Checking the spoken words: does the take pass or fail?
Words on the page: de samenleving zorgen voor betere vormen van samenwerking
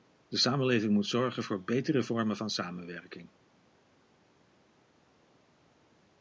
fail